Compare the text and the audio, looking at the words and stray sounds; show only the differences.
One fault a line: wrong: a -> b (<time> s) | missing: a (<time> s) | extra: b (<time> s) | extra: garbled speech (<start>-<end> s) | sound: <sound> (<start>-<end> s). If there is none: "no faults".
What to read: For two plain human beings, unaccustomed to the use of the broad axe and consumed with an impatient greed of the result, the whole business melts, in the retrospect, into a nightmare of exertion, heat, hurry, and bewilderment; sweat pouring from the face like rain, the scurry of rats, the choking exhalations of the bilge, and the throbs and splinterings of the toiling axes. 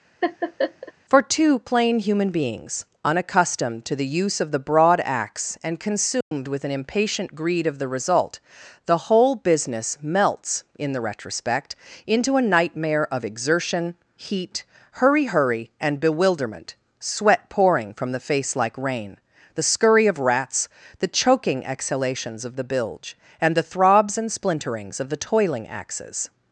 sound: laugh (0.2-0.9 s)
sound: dropout (6.2-6.3 s)
extra: hurry (15.2 s)